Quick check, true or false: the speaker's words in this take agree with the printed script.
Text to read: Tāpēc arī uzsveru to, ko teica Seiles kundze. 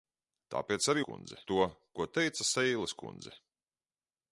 false